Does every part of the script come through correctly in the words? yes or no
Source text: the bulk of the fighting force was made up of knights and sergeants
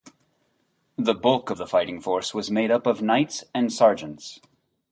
yes